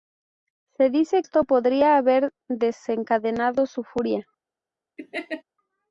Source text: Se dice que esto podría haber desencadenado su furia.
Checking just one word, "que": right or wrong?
wrong